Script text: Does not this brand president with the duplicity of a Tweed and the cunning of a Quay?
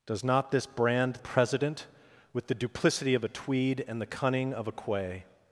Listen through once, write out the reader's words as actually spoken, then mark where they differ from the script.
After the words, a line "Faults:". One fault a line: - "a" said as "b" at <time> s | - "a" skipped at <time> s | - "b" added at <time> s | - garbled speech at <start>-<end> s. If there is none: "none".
Does not this brand president with the duplicity of a Tweed and the cunning of a Quay?
Faults:
none